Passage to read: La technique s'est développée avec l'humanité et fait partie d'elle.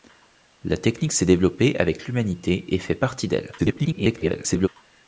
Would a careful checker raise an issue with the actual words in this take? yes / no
yes